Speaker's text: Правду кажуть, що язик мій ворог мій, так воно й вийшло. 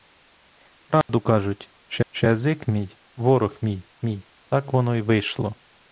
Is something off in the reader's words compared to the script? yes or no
yes